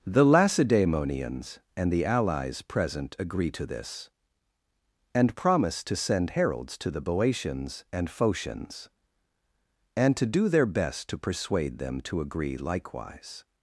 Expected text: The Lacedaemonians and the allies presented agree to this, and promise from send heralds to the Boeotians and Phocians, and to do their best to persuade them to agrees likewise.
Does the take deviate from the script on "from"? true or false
true